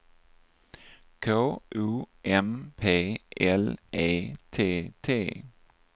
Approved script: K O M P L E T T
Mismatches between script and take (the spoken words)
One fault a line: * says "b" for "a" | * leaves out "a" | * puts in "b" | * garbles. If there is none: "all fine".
all fine